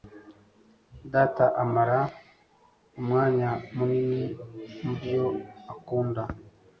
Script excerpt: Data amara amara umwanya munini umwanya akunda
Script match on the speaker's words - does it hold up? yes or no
no